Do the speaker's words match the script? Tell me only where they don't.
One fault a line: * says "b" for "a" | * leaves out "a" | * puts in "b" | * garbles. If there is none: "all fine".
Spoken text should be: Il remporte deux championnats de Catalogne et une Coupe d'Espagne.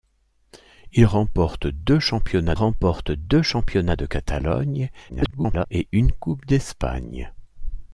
* puts in "remporte deux championnats"
* garbles